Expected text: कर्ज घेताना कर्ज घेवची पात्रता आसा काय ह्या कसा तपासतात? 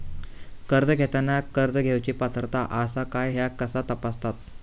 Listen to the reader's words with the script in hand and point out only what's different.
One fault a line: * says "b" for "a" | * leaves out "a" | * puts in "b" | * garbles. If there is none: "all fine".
all fine